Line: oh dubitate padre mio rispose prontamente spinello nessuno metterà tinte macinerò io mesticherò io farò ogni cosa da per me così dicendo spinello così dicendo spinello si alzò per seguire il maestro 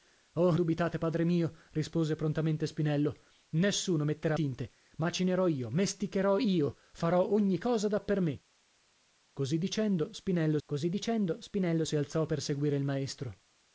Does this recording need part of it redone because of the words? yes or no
no